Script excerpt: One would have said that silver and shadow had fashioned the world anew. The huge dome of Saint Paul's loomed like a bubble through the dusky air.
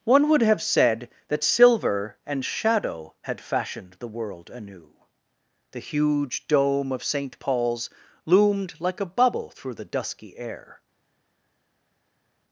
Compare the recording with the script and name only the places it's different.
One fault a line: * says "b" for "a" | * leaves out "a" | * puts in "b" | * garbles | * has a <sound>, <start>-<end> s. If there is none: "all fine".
all fine